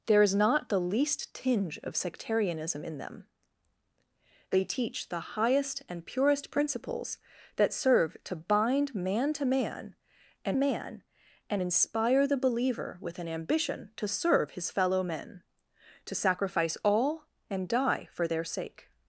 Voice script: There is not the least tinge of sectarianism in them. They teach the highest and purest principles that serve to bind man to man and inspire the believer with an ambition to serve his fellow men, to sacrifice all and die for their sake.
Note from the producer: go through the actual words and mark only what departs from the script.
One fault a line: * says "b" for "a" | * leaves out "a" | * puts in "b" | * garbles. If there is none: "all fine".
* puts in "man and"